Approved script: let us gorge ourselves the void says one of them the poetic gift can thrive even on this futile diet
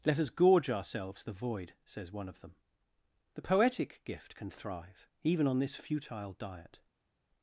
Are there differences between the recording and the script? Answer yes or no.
no